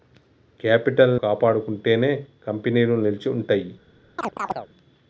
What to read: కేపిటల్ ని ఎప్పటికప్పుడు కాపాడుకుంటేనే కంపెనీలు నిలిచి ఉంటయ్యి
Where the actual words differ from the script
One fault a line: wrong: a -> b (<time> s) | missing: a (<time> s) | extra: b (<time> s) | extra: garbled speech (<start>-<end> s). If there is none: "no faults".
missing: ని ఎప్పటికప్పుడు (1.1 s)